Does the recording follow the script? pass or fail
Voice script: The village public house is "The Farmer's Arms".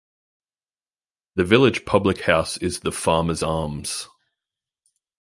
pass